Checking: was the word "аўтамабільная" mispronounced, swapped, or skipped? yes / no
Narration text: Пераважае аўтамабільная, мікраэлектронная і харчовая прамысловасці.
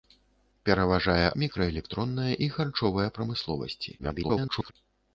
yes